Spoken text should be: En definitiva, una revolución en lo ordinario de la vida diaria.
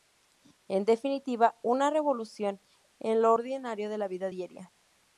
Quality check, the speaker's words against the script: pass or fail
pass